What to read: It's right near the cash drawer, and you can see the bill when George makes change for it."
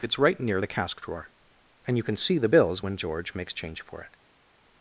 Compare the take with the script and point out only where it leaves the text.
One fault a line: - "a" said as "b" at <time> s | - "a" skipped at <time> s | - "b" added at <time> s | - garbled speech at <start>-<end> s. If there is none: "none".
- "cash" said as "cask" at 0.7 s
- "bill" said as "bills" at 2.5 s